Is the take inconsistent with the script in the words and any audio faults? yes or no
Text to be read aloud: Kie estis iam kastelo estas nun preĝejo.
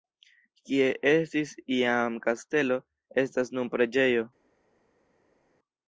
no